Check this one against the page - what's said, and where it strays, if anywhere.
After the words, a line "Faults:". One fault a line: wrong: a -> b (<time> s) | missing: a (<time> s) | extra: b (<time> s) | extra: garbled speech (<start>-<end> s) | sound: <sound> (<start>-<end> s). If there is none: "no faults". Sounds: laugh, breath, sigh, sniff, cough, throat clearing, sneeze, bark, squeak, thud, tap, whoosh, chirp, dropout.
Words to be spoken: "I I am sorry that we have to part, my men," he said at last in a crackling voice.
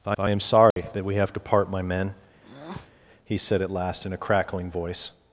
"I I am sorry that we have to part, my men," he said at last in a crackling voice.
Faults:
sound: dropout (0.7-0.8 s)
sound: breath (2.4-2.9 s)